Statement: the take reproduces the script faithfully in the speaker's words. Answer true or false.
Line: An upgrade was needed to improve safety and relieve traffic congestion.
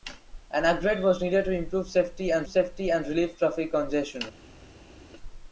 false